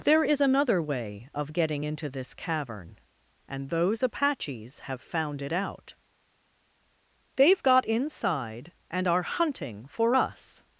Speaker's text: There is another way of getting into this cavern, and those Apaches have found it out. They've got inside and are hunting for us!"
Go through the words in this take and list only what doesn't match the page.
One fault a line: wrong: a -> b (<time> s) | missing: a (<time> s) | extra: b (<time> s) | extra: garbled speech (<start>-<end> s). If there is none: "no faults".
no faults